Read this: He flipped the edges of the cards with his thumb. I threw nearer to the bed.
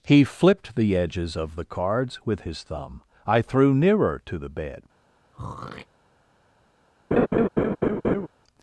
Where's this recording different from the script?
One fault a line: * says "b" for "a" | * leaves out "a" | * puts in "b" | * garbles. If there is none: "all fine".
all fine